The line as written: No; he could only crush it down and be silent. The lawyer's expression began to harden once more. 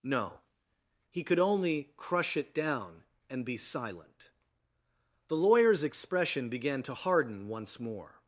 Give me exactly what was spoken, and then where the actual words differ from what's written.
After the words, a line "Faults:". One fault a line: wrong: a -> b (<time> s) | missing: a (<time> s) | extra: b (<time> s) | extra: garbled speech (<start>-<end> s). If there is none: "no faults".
No; he could only crush it down and be silent. The lawyer's expression began to harden once more.
Faults:
no faults